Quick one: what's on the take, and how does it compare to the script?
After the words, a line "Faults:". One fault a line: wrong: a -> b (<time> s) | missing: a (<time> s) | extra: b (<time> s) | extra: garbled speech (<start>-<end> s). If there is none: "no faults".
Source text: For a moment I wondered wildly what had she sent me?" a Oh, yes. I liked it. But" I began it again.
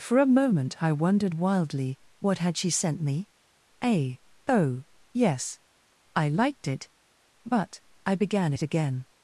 For a moment I wondered wildly what had she sent me?" a Oh, yes. I liked it. But" I began it again.
Faults:
no faults